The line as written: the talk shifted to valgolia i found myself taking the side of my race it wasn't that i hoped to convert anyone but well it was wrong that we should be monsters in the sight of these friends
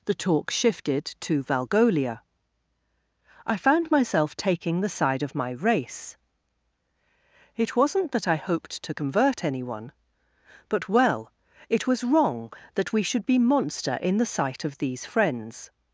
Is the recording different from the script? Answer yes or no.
yes